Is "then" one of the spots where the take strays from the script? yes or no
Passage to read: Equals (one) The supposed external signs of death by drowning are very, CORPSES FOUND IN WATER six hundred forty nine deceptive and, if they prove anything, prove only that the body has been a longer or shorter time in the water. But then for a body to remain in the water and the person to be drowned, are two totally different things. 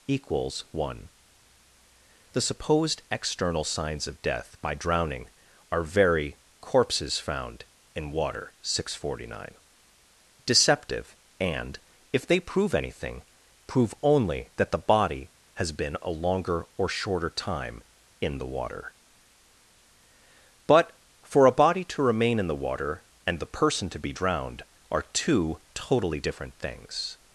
yes